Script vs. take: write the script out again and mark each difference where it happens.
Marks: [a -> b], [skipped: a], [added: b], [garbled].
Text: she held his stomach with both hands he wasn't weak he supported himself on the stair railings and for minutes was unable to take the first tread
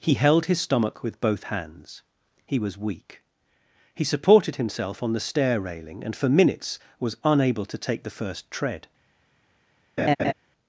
[she -> he] held his stomach with both hands he [wasn't -> was] weak he supported himself on the stair [railings -> railing] and for minutes was unable to take the first tread